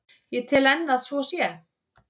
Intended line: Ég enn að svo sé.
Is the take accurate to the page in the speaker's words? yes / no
no